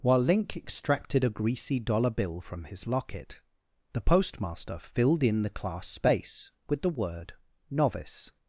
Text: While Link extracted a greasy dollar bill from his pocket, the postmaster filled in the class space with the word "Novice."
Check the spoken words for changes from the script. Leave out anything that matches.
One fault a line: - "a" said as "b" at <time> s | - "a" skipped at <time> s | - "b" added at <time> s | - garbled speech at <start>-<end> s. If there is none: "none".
- "pocket" said as "locket" at 2.9 s